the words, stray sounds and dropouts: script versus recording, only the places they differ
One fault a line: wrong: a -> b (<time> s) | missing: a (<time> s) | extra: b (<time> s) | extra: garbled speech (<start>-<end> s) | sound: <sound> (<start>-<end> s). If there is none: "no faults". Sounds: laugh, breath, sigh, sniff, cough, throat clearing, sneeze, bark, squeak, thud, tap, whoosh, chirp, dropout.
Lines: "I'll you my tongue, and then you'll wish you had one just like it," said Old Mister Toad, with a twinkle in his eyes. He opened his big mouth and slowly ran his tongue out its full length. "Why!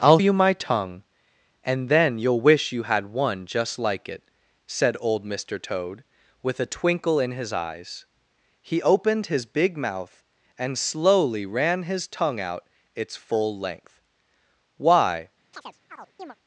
sound: chirp (15.5-16.4 s)